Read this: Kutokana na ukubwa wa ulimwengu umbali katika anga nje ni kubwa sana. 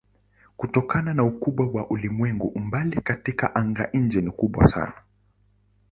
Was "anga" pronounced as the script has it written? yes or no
yes